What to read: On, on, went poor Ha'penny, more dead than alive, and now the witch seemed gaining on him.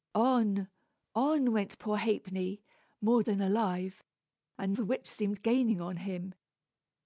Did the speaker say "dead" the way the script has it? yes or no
no